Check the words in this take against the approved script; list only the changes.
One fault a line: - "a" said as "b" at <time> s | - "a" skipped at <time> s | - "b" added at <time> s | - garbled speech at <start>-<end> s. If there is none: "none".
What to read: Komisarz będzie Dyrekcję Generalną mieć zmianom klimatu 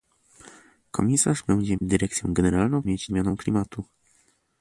none